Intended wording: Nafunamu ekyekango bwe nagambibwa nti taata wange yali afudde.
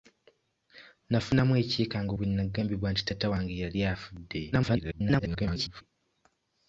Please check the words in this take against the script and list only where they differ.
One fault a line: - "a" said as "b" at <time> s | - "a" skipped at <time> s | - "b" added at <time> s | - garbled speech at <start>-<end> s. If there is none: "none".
- garbled speech at 4.5-5.8 s